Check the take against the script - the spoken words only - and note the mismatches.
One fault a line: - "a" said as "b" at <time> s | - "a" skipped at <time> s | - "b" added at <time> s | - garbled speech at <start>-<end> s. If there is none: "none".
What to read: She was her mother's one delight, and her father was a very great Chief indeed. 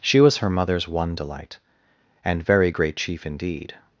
- "her father was a" skipped at 2.4 s